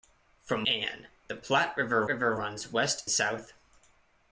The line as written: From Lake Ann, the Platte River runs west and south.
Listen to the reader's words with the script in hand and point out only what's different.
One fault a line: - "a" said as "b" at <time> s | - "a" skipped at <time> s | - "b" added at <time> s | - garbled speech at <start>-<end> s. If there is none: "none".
- "Lake" skipped at 0.7 s
- "River" added at 2.1 s
- "and" skipped at 3.1 s